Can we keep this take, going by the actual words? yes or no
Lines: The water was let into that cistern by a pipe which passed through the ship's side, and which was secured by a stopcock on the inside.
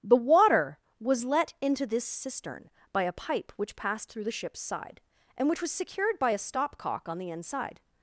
no